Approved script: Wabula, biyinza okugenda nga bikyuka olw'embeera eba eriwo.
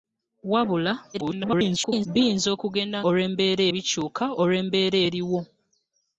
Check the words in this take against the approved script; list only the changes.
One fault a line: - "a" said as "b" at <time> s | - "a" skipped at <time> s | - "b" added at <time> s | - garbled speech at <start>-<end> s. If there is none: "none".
- garbled speech at 1.1-2.1 s
- "nga" said as "olw'embeera" at 3.1 s
- "eba" skipped at 5.0 s